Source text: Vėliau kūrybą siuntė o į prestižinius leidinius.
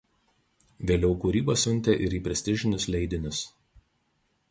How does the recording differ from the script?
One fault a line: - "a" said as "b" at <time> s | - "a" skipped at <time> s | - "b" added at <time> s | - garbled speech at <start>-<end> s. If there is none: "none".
- "o" said as "ir" at 2.1 s